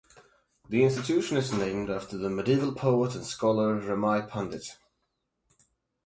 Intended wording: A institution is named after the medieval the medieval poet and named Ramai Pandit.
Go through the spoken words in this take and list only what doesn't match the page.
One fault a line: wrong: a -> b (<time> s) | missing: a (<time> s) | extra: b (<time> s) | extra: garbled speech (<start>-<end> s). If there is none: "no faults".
wrong: A -> The (0.7 s)
missing: the medieval (2.7 s)
wrong: named -> scholar (3.2 s)